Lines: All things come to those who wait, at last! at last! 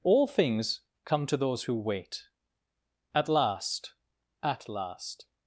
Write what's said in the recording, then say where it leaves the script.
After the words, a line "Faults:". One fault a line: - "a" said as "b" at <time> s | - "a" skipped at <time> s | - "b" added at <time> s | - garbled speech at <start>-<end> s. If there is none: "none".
All things come to those who wait, at last! at last!
Faults:
none